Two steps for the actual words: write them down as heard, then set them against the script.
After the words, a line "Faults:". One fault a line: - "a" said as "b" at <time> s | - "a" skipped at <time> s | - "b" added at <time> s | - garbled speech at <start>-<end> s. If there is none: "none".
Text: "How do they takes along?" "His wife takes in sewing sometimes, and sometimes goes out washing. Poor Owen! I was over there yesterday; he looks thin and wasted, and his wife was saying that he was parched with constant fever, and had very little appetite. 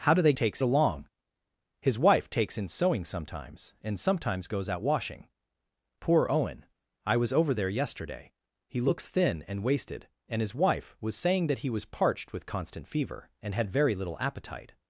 "How do they takes along?" "His wife takes in sewing sometimes, and sometimes goes out washing. Poor Owen! I was over there yesterday; he looks thin and wasted, and his wife was saying that he was parched with constant fever, and had very little appetite.
Faults:
none